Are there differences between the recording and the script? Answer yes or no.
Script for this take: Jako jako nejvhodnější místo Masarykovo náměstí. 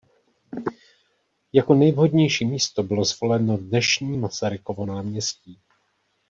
yes